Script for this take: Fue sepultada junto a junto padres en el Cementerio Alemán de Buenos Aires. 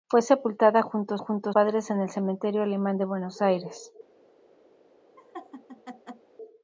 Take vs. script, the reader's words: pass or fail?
pass